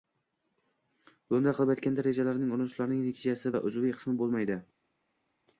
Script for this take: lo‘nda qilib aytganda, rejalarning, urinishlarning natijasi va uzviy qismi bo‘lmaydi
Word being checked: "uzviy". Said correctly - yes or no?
yes